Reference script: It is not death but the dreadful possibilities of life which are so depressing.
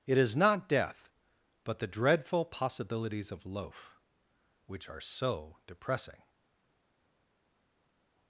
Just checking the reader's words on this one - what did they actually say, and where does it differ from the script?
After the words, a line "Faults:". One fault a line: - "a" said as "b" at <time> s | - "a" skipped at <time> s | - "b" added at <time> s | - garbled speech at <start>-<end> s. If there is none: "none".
It is not death but the dreadful possibilities of loaf which are so depressing.
Faults:
- "life" said as "loaf" at 3.5 s